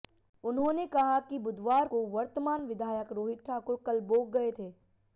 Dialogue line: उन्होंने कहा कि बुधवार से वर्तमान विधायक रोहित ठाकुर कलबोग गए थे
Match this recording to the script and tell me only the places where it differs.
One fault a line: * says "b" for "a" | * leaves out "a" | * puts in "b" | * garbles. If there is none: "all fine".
* says "को" for "से"